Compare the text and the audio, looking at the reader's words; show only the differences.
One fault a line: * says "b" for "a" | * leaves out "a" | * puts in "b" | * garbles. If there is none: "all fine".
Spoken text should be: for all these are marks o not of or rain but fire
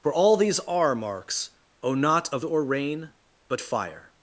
all fine